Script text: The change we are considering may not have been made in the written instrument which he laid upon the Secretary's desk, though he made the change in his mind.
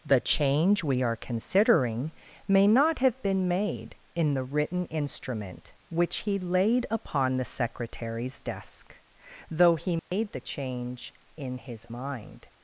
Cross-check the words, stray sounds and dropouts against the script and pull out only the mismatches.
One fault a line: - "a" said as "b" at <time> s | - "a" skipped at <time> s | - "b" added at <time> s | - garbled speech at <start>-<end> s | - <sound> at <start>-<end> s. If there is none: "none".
- dropout at 10.0-10.1 s